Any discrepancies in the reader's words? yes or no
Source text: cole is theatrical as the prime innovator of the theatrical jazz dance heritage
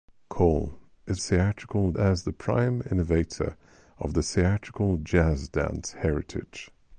no